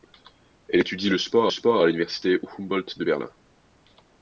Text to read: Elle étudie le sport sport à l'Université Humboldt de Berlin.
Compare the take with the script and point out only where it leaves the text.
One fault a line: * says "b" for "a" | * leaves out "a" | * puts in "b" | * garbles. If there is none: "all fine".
all fine